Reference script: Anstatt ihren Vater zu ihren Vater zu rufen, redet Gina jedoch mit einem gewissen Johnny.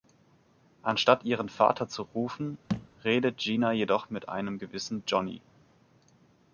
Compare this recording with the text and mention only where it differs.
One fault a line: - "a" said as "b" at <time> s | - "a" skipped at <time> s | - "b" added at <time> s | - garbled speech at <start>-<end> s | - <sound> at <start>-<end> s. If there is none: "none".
- "ihren Vater zu" skipped at 2.0 s
- thud at 2.7-2.9 s